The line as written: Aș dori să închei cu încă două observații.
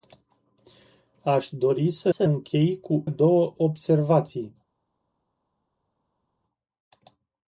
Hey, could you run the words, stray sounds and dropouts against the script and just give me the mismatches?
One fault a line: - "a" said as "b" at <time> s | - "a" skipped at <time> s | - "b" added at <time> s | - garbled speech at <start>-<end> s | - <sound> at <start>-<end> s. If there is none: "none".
- "să" added at 2.1 s
- "încă" skipped at 3.0 s